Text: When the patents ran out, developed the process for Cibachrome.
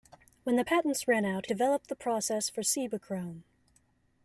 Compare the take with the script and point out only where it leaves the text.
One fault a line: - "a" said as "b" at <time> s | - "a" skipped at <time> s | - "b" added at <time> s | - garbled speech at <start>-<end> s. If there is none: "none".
none